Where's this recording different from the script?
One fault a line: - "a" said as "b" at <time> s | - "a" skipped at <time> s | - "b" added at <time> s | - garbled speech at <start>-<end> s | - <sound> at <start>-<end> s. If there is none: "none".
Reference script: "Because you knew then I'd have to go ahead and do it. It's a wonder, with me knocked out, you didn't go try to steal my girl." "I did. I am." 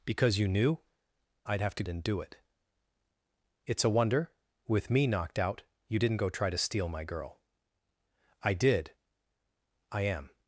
- "then" skipped at 0.8 s
- "go ahead" skipped at 1.8 s